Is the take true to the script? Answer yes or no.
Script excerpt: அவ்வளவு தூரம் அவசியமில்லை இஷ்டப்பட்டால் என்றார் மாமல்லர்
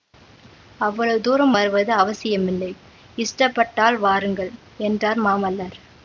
no